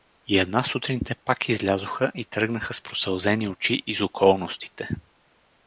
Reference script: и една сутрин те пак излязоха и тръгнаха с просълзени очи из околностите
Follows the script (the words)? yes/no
yes